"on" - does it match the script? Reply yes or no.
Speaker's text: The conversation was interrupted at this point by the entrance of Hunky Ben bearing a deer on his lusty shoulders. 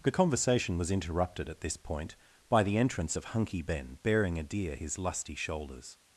no